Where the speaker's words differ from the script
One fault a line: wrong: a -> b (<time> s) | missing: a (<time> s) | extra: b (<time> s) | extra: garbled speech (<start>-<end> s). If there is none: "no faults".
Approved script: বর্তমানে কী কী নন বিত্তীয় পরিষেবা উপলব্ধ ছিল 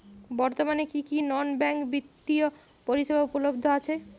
extra: ব্যাঙ্ক (1.6 s)
wrong: ছিল -> আছে (3.8 s)